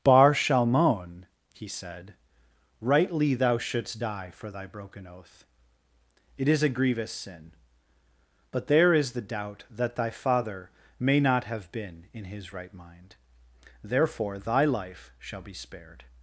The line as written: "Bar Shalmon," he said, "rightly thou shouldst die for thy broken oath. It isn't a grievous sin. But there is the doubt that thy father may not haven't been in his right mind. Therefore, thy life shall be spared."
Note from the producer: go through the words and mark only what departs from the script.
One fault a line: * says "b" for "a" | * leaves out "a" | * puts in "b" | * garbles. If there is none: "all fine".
* says "is" for "isn't"
* says "have" for "haven't"